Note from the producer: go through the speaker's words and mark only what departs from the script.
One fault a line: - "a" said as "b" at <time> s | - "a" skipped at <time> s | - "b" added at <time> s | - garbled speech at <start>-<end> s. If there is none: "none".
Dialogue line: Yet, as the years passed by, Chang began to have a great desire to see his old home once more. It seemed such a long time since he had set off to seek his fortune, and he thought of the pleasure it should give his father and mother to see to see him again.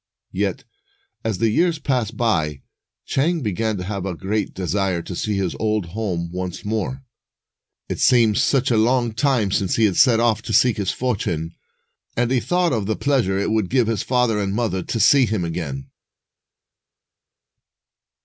- "should" said as "would" at 13.5 s
- "to see" skipped at 15.3 s